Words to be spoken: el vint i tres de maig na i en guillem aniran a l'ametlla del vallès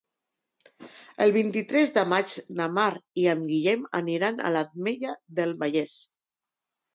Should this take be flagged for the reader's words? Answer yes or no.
yes